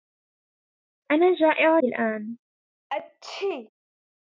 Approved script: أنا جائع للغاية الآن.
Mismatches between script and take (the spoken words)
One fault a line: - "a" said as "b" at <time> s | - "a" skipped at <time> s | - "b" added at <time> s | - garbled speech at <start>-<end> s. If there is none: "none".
- "للغاية" skipped at 1.8 s